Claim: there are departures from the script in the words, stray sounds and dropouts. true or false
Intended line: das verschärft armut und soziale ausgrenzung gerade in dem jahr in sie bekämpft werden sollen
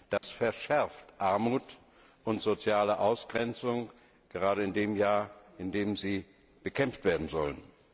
true